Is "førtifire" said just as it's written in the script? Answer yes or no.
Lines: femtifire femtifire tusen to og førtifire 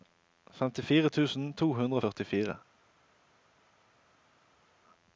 yes